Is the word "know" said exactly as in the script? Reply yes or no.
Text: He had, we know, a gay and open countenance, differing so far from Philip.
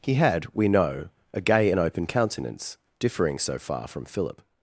yes